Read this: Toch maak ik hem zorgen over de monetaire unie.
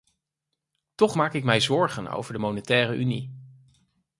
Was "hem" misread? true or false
true